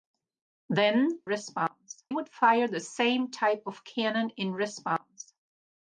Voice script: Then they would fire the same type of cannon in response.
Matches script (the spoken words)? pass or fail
fail